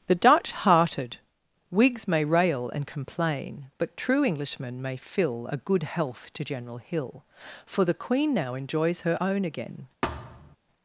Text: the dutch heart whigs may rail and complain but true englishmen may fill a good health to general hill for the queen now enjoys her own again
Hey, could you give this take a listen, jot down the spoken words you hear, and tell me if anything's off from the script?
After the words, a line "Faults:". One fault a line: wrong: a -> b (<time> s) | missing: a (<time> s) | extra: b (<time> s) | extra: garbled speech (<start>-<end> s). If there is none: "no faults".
the dutch hearted whigs may rail and complain but true englishmen may fill a good health to general hill for the queen now enjoys her own again
Faults:
wrong: heart -> hearted (0.5 s)